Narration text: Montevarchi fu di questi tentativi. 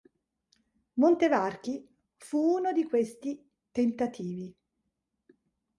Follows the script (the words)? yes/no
no